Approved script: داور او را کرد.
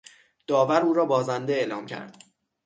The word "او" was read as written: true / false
true